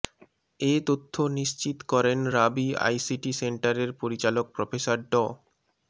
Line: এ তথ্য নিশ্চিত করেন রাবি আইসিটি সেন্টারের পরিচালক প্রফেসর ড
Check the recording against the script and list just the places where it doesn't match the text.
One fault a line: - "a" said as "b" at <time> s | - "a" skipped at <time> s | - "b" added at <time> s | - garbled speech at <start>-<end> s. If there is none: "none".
none